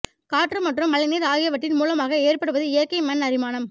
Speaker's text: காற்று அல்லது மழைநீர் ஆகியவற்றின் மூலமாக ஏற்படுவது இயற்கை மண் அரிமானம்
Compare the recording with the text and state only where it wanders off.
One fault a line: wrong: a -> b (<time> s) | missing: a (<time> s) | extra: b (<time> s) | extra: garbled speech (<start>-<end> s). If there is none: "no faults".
wrong: அல்லது -> மற்றும் (0.6 s)